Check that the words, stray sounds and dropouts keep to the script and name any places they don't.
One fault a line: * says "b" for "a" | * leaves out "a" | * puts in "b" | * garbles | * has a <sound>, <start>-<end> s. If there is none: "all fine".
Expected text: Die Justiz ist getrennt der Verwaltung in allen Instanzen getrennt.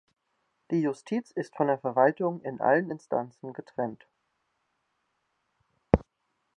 * says "von" for "getrennt"